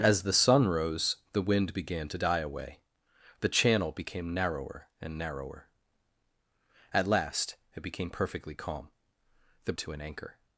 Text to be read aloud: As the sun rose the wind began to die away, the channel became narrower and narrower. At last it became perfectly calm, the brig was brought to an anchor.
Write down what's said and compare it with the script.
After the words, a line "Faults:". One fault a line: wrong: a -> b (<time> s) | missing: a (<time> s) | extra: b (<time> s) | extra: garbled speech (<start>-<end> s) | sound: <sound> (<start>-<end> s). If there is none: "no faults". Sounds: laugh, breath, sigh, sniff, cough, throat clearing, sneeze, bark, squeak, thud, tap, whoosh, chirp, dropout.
As the sun rose the wind began to die away, the channel became narrower and narrower. At last it became perfectly calm, the to an anchor.
Faults:
missing: brig was brought (9.7 s)